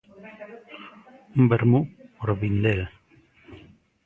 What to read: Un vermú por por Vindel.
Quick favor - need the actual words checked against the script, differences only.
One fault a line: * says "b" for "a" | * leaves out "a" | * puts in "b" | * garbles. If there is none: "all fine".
* leaves out "por"